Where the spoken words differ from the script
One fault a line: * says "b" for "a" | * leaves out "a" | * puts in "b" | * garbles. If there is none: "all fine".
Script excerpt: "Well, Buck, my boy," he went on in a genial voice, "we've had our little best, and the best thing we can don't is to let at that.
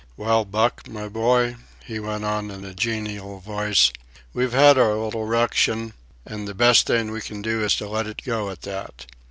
* says "ruction" for "best"
* says "do" for "don't"
* puts in "it go"